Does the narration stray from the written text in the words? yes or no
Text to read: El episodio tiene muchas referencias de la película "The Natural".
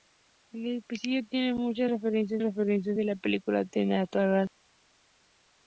yes